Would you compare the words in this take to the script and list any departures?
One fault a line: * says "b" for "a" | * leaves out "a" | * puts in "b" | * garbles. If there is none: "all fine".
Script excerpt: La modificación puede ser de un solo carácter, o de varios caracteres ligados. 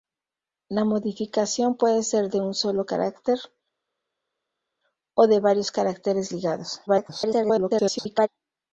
* garbles